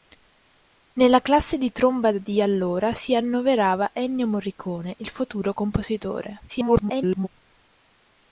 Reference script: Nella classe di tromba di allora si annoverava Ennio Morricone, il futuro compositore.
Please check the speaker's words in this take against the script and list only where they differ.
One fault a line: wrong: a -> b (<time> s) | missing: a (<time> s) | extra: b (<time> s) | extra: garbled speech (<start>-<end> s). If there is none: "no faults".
extra: garbled speech (6.5-7.3 s)